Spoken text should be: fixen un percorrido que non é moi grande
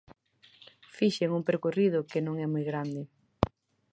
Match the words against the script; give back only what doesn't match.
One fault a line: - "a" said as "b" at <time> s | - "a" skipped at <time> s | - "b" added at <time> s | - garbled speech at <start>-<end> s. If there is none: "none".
none